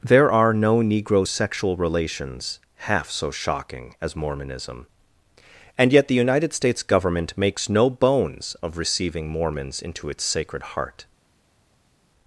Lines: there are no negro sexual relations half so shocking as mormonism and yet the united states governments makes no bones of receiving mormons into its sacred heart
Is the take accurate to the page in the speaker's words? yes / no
no